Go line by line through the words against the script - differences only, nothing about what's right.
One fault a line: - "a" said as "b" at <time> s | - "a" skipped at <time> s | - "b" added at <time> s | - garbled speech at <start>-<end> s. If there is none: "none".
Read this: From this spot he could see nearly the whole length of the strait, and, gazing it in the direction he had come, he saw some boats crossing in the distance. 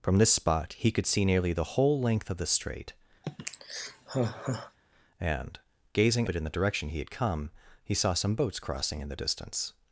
none